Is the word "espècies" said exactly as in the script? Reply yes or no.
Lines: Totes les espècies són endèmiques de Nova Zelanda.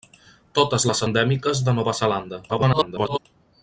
no